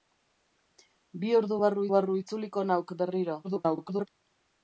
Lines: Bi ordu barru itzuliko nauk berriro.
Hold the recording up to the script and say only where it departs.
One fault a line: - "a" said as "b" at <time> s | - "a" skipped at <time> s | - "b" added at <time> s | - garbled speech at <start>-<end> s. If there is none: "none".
- "barru" added at 1.9 s
- garbled speech at 3.4-4.1 s